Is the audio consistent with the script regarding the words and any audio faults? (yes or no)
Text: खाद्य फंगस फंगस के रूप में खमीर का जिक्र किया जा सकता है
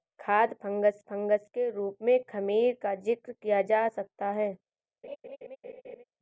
no